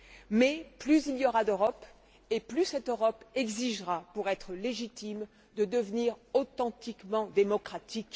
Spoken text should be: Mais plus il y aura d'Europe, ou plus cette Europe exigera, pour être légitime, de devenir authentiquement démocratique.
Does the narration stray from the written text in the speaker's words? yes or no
yes